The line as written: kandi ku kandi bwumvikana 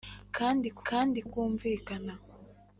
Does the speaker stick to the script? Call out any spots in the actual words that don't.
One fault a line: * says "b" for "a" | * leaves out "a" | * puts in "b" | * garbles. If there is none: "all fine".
all fine